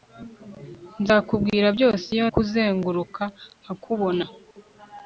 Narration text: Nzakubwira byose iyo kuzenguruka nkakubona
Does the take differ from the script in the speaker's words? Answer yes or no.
no